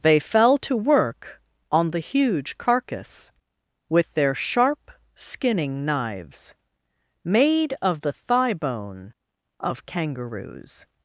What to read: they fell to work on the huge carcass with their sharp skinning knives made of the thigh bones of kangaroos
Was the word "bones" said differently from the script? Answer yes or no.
yes